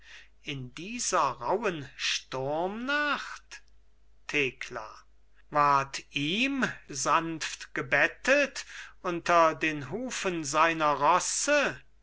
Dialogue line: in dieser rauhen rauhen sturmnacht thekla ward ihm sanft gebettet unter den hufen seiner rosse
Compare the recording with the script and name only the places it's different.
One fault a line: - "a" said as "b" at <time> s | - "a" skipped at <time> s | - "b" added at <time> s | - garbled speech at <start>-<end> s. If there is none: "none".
- "rauhen" skipped at 1.9 s